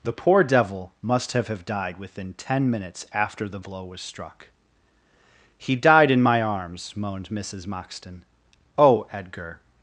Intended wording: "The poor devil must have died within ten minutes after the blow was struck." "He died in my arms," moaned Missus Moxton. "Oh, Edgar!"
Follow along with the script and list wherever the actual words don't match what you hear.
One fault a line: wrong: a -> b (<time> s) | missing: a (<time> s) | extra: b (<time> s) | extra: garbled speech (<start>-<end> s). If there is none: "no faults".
extra: have (1.5 s)